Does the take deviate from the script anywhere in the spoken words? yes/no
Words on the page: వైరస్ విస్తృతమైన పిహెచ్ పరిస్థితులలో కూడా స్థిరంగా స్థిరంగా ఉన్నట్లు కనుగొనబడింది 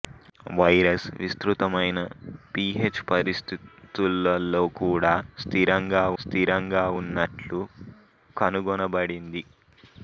no